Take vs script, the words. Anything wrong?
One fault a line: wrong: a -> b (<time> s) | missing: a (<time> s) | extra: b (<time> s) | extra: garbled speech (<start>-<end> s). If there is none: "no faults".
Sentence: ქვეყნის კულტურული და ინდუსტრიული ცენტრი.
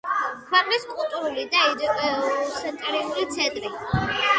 no faults